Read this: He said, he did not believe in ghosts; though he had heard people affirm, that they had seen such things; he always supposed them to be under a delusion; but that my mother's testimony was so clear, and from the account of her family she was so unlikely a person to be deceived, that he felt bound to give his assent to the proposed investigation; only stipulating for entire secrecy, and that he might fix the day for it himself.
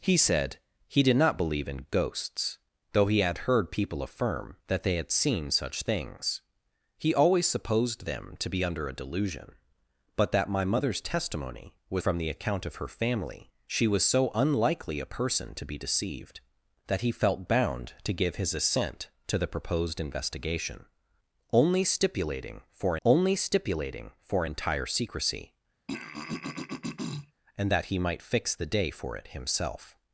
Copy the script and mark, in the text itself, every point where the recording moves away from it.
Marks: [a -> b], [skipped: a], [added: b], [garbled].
He said, he did not believe in ghosts; though he had heard people affirm, that they had seen such things; he always supposed them to be under a delusion; but that my mother's testimony was [skipped: so clear, and] from the account of her family she was so unlikely a person to be deceived, that he felt bound to give his assent to the proposed investigation; only stipulating for [added: only stipulating for] entire secrecy, and that he might fix the day for it himself.